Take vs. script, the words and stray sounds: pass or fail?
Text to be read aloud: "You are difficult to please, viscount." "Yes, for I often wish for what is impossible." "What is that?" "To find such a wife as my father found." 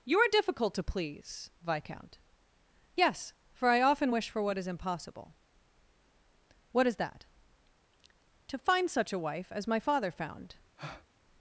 fail